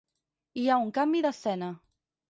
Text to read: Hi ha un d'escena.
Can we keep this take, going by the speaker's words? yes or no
no